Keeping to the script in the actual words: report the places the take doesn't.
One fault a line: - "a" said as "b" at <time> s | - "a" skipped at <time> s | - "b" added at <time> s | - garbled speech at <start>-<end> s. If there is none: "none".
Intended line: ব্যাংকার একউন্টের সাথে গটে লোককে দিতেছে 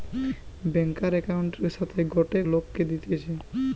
none